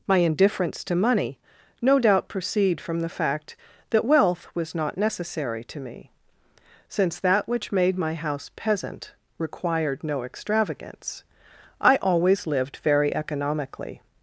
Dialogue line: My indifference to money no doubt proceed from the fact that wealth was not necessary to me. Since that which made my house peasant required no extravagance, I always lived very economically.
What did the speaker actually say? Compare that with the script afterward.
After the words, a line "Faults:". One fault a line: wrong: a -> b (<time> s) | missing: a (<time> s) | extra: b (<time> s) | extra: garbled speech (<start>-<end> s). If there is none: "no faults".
My indifference to money no doubt proceed from the fact that wealth was not necessary to me. Since that which made my house peasant required no extravagance, I always lived very economically.
Faults:
no faults